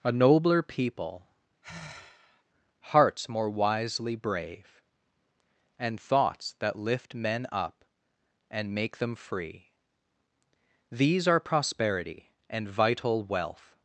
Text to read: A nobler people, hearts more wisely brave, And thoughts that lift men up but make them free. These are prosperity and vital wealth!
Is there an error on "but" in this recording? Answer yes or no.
yes